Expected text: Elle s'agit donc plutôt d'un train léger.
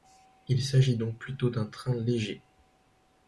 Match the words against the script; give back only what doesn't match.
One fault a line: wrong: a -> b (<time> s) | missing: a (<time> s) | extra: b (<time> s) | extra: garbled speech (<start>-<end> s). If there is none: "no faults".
wrong: Elle -> Il (0.5 s)